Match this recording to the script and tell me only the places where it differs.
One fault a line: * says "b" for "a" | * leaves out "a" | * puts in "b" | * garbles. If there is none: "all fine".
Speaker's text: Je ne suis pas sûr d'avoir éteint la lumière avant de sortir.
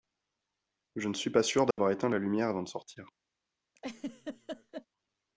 all fine